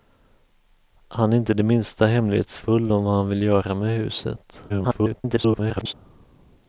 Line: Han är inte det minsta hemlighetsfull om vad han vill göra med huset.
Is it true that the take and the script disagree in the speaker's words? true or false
true